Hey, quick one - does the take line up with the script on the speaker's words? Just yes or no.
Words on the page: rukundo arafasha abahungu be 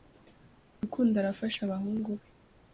yes